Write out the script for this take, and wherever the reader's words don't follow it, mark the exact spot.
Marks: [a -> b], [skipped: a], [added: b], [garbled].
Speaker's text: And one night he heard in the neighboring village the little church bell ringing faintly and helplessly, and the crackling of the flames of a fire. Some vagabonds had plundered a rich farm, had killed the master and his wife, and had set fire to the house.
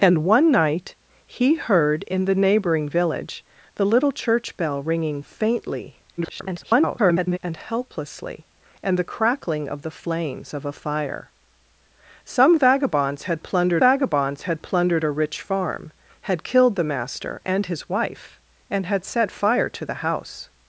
And one night he heard in the neighboring village the little church bell ringing faintly [garbled] and helplessly, and the crackling of the flames of a fire. Some vagabonds had plundered [added: vagabonds had plundered] a rich farm, had killed the master and his wife, and had set fire to the house.